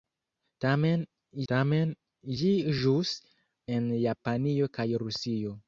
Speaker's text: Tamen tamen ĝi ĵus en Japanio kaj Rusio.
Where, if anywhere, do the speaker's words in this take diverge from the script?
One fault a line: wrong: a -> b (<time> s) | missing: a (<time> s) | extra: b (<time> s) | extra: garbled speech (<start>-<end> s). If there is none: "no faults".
no faults